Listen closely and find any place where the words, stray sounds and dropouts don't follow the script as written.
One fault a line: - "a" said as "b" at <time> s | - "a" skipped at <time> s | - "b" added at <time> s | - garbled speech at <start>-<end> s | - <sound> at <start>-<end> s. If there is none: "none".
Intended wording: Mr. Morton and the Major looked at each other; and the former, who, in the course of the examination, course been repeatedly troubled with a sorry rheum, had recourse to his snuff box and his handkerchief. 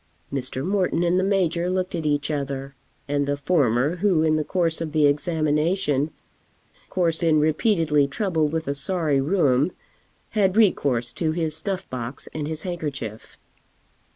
none